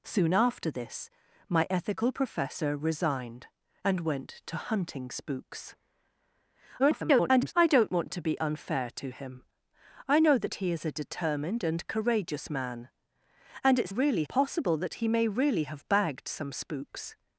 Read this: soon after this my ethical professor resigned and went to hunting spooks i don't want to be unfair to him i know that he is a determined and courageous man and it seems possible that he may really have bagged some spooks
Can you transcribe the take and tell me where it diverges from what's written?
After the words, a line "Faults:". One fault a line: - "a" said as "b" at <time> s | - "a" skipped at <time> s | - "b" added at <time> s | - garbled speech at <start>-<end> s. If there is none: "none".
soon after this my ethical professor resigned and went to hunting spooks [garbled] i don't want to be unfair to him i know that he is a determined and courageous man and it really possible that he may really have bagged some spooks
Faults:
- garbled speech at 6.8-7.5 s
- "seems" said as "really" at 13.9 s